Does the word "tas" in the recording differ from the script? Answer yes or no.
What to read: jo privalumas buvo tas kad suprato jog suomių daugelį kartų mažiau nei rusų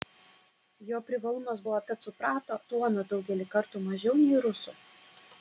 yes